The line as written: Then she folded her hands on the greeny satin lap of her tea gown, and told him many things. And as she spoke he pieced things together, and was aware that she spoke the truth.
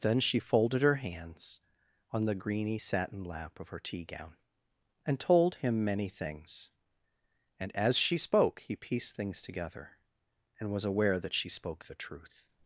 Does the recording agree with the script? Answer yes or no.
yes